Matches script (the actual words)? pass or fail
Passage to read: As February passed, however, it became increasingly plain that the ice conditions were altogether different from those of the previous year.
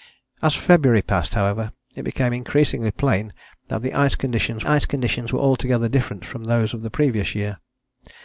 fail